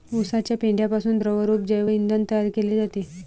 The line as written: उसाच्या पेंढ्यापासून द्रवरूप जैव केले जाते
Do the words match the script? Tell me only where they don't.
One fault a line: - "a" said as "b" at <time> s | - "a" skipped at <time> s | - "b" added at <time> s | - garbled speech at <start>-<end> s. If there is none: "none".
- "इंधन तयार" added at 1.9 s